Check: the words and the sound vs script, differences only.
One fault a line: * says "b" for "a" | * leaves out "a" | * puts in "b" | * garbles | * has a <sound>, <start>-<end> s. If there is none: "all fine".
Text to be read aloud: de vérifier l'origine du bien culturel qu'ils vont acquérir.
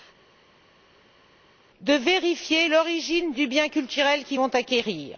all fine